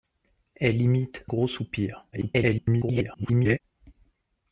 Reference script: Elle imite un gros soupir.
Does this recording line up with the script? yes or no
no